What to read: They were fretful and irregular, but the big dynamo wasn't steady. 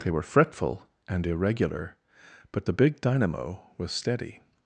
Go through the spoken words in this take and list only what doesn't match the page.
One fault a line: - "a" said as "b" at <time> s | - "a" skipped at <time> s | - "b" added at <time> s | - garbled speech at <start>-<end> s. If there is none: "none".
- "wasn't" said as "was" at 3.8 s